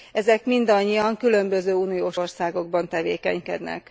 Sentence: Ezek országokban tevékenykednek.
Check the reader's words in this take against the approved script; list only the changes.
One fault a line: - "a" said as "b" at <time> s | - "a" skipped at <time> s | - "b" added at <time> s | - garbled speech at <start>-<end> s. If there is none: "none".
- "mindannyian különböző uniós" added at 0.5 s